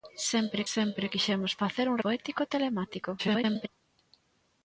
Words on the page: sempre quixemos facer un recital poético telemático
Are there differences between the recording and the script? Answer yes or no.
yes